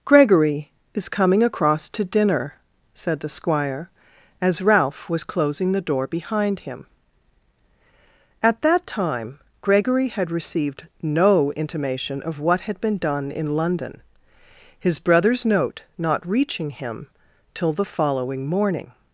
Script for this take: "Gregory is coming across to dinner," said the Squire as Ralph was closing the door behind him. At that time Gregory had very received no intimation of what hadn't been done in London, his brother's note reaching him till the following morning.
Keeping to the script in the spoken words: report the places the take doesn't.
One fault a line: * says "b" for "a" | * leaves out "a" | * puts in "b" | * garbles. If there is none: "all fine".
* leaves out "very"
* says "had" for "hadn't"
* puts in "not"